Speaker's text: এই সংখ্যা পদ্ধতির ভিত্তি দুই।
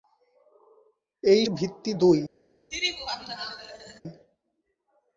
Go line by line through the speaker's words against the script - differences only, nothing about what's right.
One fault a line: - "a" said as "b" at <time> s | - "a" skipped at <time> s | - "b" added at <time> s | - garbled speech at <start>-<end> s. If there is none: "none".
- "সংখ্যা পদ্ধতির" skipped at 1.4 s